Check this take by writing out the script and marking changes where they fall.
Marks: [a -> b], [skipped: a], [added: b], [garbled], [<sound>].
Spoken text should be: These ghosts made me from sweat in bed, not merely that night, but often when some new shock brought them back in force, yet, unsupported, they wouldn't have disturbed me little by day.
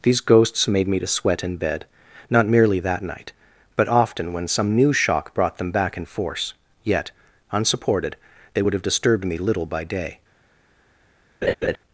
These ghosts made me [from -> to] sweat in bed, not merely that night, but often when some new shock brought them back in force, yet, unsupported, they [wouldn't -> would] have disturbed me little by day. [laugh]